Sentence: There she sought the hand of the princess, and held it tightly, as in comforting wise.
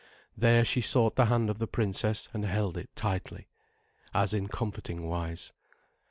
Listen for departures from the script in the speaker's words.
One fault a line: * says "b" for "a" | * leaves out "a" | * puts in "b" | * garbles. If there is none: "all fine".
all fine